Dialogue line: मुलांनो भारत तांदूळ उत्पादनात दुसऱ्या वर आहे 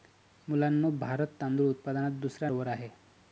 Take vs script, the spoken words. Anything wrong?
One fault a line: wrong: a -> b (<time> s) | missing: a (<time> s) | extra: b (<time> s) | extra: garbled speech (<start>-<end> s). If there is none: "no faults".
no faults